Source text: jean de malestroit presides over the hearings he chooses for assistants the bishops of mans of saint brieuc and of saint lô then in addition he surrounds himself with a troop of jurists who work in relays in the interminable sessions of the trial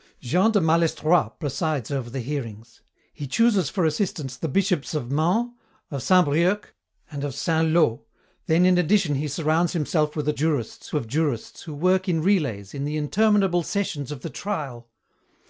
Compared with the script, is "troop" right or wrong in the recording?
wrong